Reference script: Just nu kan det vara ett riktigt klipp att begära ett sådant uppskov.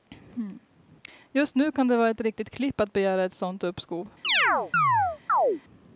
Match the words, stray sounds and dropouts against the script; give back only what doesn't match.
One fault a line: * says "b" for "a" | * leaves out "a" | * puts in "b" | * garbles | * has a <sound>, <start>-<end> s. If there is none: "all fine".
* has a chirp, 4.2-5.6 s